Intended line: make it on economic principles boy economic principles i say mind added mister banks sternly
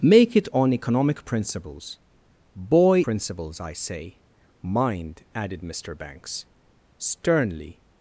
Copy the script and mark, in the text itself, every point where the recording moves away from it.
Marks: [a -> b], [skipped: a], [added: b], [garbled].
make it on economic principles boy [skipped: economic] principles i say mind added mister banks sternly